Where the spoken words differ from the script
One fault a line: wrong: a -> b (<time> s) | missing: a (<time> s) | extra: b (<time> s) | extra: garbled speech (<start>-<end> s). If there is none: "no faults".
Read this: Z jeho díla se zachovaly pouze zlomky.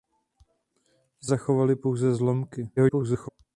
missing: jeho díla se (1.3 s)
extra: garbled speech (2.8-3.3 s)